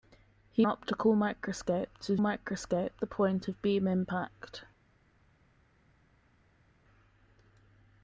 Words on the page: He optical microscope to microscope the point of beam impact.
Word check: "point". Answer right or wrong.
right